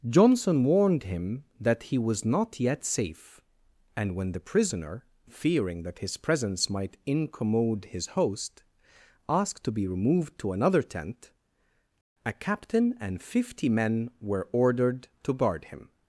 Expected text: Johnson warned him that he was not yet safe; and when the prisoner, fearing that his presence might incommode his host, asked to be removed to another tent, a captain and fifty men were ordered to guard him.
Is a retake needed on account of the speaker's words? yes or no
no